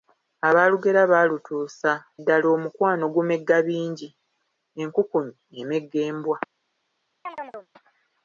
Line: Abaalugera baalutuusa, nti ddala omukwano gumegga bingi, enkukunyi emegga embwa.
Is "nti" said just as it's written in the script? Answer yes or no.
no